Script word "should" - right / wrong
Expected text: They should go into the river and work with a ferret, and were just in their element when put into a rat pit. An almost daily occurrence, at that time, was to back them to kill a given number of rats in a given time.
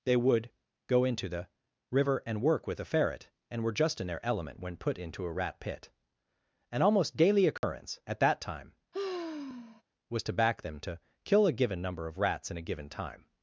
wrong